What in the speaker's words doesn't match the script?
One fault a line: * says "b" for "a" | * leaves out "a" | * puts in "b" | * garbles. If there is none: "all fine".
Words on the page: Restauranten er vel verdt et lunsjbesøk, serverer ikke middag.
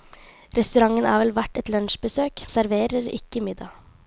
all fine